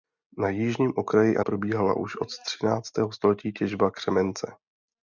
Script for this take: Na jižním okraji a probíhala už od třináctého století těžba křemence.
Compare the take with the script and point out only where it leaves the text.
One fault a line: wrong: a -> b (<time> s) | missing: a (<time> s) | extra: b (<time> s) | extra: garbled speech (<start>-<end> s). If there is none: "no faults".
no faults